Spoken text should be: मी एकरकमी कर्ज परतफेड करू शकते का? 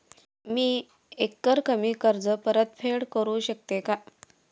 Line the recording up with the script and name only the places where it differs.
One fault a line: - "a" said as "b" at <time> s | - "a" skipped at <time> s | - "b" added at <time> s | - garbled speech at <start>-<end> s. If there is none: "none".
none